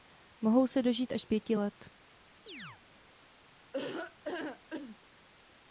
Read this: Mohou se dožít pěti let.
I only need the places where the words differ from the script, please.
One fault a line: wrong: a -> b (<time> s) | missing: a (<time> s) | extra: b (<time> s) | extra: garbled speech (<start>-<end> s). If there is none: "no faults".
extra: až (1.1 s)